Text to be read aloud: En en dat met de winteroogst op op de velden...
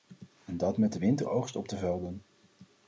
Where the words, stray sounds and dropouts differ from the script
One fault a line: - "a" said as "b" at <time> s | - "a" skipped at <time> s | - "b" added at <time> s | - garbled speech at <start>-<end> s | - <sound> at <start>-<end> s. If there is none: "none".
- "en" skipped at 0.6 s
- "op" skipped at 1.7 s